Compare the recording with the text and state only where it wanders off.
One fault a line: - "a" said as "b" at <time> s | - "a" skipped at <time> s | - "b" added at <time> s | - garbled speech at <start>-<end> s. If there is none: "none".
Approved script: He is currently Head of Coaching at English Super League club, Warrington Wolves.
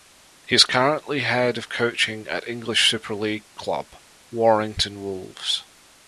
none